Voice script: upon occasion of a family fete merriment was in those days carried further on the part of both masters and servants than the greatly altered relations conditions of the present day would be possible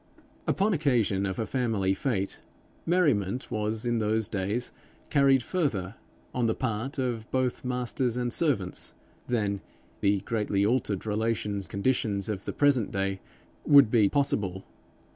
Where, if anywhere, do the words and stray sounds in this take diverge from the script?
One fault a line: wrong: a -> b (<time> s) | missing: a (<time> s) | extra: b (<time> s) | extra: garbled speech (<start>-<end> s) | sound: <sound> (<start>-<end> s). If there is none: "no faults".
no faults